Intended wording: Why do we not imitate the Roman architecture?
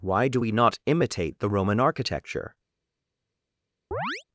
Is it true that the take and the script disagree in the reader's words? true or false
false